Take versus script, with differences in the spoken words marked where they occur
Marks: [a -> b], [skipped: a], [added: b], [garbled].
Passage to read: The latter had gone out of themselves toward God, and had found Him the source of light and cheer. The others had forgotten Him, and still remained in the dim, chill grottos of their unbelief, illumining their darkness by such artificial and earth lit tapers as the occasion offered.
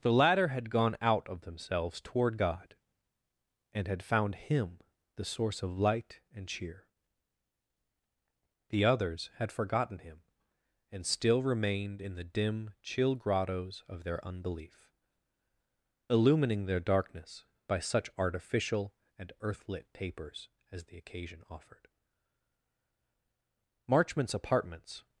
The latter had gone out of themselves toward God, and had found Him the source of light and cheer. The others had forgotten Him, and still remained in the dim, chill grottos of their unbelief, illumining their darkness by such artificial and earth lit tapers as the occasion offered. [added: Marchmont's apartments]